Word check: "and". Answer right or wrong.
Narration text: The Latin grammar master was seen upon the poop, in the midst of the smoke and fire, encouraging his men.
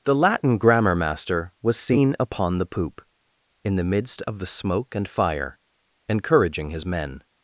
right